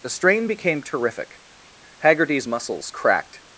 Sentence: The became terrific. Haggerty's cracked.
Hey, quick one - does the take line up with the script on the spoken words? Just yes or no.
no